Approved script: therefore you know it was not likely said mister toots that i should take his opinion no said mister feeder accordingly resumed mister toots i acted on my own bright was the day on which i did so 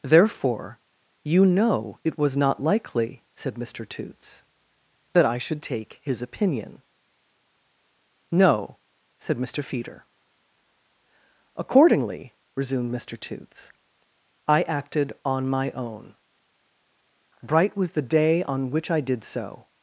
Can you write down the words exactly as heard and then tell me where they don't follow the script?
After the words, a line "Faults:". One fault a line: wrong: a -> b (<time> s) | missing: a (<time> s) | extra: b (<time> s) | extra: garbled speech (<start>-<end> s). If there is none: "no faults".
therefore you know it was not likely said mister toots that i should take his opinion no said mister feeder accordingly resumed mister toots i acted on my own bright was the day on which i did so
Faults:
no faults